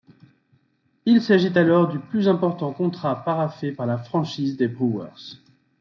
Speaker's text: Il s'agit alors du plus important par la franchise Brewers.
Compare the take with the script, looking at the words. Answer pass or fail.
fail